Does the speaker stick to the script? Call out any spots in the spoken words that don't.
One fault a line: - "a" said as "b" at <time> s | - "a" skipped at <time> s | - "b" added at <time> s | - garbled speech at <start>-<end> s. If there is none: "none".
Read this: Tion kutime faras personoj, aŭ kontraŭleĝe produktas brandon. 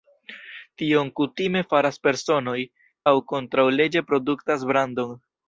none